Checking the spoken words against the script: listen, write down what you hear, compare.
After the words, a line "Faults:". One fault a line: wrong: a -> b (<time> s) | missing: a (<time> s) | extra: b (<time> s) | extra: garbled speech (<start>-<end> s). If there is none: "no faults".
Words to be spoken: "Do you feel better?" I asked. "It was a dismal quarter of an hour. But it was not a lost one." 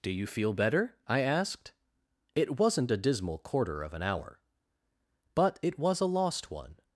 "Do you feel better?" I asked. "It wasn't a dismal quarter of an hour. But it was a lost one."
Faults:
wrong: was -> wasn't (2.6 s)
missing: not (6.0 s)